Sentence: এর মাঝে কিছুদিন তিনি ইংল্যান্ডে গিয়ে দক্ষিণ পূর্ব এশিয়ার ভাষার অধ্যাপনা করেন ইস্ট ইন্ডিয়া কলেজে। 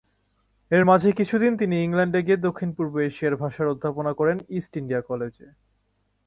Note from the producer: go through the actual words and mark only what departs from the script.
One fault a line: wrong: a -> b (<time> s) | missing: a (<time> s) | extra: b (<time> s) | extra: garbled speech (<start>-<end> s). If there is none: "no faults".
no faults